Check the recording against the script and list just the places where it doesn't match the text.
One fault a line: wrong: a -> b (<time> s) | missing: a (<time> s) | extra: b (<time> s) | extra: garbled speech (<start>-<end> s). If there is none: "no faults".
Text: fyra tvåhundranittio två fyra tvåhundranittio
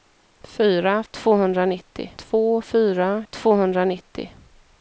no faults